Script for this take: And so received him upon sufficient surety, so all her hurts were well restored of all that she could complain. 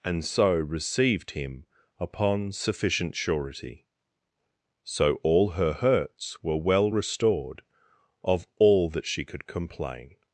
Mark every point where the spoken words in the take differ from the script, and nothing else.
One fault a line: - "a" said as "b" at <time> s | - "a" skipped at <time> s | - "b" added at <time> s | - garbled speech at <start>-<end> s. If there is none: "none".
none